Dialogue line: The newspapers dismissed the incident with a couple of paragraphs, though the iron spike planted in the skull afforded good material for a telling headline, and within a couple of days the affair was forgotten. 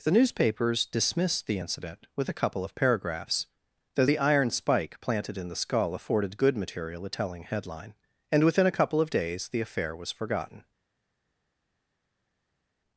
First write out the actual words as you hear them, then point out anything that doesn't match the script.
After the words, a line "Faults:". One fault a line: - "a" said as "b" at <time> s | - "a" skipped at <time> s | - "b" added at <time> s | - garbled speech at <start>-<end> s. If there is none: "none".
The newspapers dismissed the incident with a couple of paragraphs, though the iron spike planted in the skull afforded good material a telling headline, and within a couple of days the affair was forgotten.
Faults:
- "for" skipped at 7.0 s